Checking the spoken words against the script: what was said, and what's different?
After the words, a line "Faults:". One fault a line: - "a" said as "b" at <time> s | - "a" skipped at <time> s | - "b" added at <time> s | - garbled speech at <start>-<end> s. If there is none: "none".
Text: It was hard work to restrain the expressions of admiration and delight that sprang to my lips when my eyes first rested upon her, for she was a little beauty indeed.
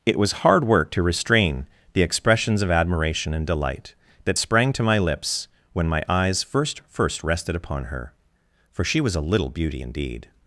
It was hard work to restrain the expressions of admiration and delight that sprang to my lips when my eyes first first rested upon her, for she was a little beauty indeed.
Faults:
- "first" added at 6.9 s